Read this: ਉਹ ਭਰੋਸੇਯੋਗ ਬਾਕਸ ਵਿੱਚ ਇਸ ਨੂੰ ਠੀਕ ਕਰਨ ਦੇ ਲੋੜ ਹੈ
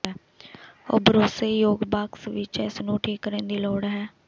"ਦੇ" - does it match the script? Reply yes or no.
no